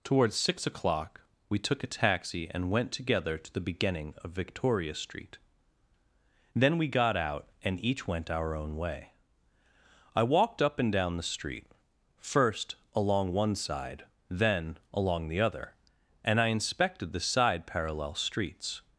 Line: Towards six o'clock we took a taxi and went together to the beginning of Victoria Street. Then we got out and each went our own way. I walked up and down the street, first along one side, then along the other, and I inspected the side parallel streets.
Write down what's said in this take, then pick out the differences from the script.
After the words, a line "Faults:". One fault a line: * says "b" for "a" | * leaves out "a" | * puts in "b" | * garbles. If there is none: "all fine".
Towards six o'clock we took a taxi and went together to the beginning of Victoria Street. Then we got out and each went our own way. I walked up and down the street, first along one side, then along the other, and I inspected the side parallel streets.
Faults:
all fine